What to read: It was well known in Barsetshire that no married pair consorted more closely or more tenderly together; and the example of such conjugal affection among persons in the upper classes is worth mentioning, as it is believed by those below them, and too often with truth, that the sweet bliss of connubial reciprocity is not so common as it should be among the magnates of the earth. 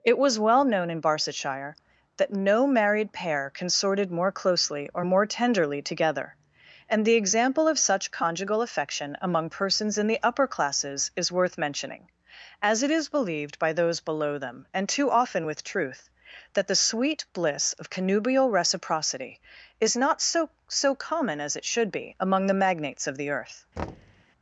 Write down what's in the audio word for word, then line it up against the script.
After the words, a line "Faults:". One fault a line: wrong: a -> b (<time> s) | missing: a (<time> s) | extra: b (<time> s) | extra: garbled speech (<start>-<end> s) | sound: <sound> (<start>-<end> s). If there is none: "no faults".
It was well known in Barsetshire that no married pair consorted more closely or more tenderly together; and the example of such conjugal affection among persons in the upper classes is worth mentioning, as it is believed by those below them, and too often with truth, that the sweet bliss of connubial reciprocity is not so so common as it should be among the magnates of the earth.
Faults:
extra: so (20.7 s)
sound: thud (23.8-24.2 s)